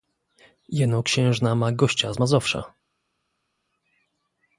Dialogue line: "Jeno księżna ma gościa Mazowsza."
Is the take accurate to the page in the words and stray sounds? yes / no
no